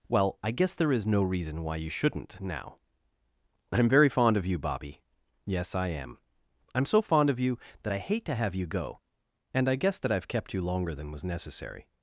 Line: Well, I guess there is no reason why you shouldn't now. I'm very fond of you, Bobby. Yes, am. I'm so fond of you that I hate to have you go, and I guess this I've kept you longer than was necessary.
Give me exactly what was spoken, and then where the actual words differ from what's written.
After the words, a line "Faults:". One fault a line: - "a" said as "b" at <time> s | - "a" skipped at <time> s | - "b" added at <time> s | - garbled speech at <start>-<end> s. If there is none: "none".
Well, I guess there is no reason why you shouldn't now. I'm very fond of you, Bobby. Yes, I am. I'm so fond of you that I hate to have you go, and I guess that I've kept you longer than was necessary.
Faults:
- "I" added at 5.8 s
- "this" said as "that" at 10.0 s